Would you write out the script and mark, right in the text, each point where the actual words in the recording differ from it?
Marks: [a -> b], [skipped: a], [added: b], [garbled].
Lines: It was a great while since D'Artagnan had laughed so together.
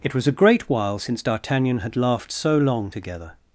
It was a great while since D'Artagnan had laughed so [added: long] together.